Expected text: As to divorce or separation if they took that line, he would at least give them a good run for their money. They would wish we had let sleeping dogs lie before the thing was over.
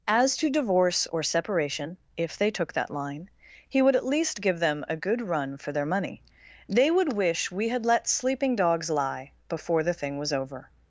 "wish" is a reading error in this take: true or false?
false